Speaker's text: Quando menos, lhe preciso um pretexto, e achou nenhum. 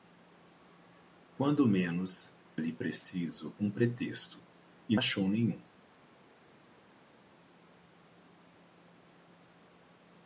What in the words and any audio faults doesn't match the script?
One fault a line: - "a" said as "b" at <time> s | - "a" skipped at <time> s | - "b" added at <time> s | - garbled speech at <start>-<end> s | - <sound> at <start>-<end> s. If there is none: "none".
none